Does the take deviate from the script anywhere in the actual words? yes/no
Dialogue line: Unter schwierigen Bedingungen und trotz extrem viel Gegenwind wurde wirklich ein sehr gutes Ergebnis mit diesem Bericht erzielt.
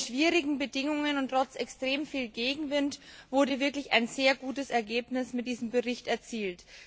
no